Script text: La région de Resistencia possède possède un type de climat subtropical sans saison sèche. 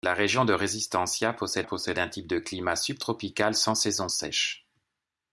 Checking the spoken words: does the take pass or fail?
pass